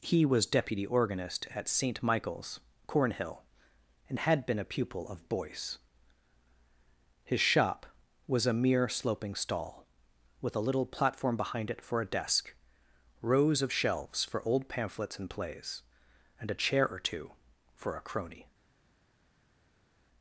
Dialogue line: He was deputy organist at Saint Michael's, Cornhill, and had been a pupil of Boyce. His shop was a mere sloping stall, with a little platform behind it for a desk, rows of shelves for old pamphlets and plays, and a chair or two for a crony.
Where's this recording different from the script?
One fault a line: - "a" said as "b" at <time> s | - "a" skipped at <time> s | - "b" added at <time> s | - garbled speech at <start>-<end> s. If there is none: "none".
none